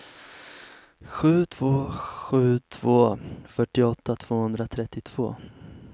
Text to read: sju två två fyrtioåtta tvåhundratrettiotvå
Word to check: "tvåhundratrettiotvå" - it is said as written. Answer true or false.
true